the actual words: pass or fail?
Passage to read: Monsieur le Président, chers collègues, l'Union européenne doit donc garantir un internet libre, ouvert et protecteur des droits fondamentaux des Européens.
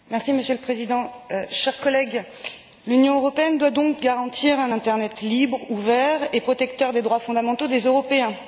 pass